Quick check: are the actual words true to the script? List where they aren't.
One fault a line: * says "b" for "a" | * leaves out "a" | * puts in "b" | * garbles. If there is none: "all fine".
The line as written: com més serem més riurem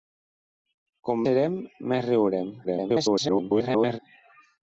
* leaves out "més"
* garbles